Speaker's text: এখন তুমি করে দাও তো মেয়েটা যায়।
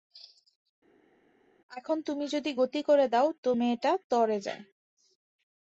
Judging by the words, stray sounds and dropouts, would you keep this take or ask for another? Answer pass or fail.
fail